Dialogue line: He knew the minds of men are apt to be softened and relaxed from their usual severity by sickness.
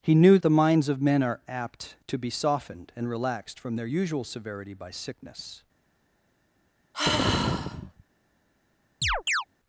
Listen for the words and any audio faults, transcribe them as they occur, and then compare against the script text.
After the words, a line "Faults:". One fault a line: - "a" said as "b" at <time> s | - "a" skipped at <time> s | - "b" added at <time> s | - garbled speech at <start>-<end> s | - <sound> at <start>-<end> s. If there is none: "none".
He knew the minds of men are apt to be softened and relaxed from their usual severity by sickness.
Faults:
- sigh at 6.9-8.0 s
- chirp at 9.0-9.4 s